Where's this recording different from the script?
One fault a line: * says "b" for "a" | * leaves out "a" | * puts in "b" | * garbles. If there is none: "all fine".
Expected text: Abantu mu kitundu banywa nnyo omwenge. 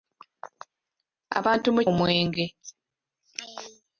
* leaves out "kitundu banywa nnyo"